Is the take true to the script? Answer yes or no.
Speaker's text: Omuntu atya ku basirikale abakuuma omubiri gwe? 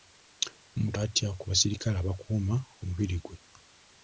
yes